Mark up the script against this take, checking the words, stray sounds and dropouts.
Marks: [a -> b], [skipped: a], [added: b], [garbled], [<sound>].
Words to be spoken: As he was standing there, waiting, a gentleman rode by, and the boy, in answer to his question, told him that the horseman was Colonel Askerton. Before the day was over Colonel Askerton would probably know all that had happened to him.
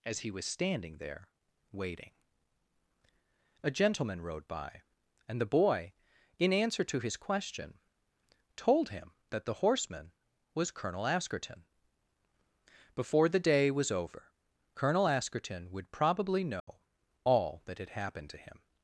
As he was standing there, waiting, a gentleman rode by, and the boy, in answer to his question, told him that the horseman was Colonel Askerton. Before the day was over Colonel Askerton would probably know [dropout] all that had happened to him.